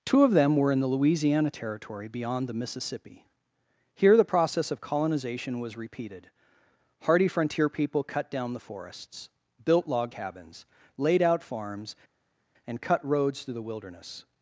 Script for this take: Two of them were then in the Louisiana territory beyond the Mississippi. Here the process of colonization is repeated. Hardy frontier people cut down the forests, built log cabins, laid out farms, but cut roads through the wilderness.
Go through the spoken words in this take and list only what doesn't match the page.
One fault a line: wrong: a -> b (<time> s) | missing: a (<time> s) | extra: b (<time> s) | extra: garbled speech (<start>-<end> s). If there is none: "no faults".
missing: then (0.7 s)
wrong: is -> was (5.6 s)
wrong: but -> and (12.7 s)